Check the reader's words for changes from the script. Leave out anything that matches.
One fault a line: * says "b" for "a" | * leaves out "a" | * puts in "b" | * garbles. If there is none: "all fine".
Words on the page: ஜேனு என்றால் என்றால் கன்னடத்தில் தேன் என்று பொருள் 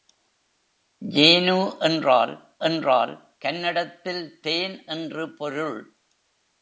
all fine